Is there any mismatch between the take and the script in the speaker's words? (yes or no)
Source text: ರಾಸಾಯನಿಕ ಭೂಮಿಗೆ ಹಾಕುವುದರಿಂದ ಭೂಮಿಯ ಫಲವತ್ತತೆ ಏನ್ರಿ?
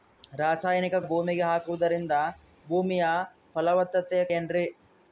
no